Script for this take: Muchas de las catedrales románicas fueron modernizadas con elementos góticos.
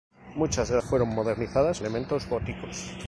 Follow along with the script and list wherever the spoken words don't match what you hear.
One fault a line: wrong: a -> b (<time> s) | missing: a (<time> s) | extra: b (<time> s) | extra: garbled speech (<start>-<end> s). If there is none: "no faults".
missing: las catedrales románicas (0.8 s)
missing: con (1.8 s)